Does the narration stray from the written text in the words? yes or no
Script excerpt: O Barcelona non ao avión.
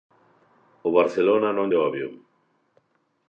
no